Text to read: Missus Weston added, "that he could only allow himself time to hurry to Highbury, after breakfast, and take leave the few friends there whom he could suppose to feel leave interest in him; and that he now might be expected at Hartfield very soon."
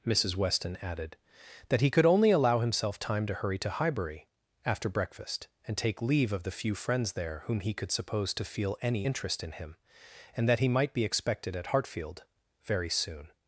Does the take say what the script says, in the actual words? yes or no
no